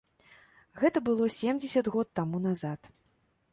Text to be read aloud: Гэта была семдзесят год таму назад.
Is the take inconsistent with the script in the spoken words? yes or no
yes